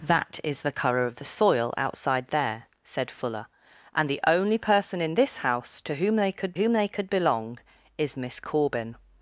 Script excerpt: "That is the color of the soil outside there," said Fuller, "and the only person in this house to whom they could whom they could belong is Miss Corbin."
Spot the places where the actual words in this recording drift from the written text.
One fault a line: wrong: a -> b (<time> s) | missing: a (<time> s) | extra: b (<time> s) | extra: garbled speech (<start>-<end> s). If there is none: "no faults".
no faults